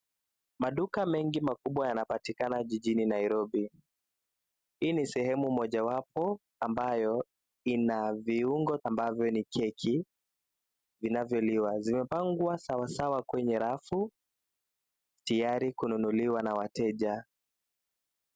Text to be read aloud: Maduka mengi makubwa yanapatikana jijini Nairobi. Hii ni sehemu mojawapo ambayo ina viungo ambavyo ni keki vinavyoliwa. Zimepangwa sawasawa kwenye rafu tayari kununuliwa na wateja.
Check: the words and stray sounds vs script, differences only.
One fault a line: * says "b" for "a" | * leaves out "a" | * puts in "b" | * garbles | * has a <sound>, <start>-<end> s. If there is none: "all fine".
all fine